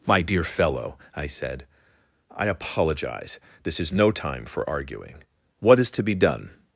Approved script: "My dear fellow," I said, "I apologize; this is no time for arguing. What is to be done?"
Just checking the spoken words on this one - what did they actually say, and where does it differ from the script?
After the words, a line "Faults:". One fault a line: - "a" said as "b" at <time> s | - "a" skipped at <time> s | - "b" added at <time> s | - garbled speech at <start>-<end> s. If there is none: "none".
"My dear fellow," I said, "I apologize; this is no time for arguing. What is to be done?"
Faults:
none